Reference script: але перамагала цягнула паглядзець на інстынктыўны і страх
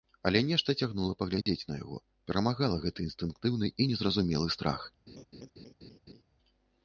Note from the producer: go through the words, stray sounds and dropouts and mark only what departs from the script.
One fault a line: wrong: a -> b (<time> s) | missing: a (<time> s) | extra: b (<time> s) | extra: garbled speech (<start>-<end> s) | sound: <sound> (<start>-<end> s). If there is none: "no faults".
wrong: перамагала -> нешта (0.5 s)
sound: dropout (1.4-1.5 s)
extra: яго перамагала гэты (1.8 s)
extra: незразумелы (3.9 s)
sound: laugh (5.1-6.2 s)